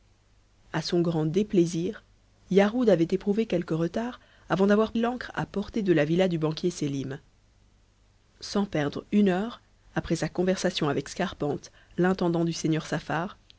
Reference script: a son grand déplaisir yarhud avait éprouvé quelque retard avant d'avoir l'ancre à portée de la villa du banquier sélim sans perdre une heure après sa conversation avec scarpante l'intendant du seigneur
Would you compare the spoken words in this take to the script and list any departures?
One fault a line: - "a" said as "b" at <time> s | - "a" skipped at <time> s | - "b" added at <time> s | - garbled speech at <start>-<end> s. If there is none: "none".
none